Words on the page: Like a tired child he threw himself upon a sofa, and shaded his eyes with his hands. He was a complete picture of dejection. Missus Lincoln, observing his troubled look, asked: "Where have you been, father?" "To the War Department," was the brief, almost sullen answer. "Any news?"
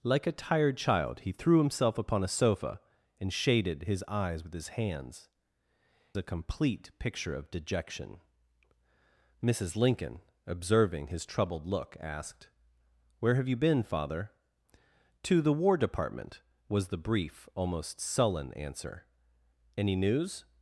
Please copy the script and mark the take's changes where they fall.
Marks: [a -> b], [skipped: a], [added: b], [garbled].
Like a tired child he threw himself upon a sofa, and shaded his eyes with his hands. [skipped: He was] a complete picture of dejection. Missus Lincoln, observing his troubled look, asked: "Where have you been, father?" "To the War Department," was the brief, almost sullen answer. "Any news?"